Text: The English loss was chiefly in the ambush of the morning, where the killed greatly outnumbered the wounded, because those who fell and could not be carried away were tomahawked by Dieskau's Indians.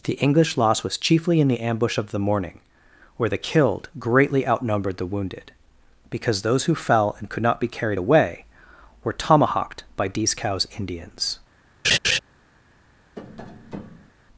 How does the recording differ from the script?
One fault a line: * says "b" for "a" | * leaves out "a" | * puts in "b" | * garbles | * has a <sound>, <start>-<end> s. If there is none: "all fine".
* has a laugh, 11.8-12.2 s
* has a tap, 13.2-14.1 s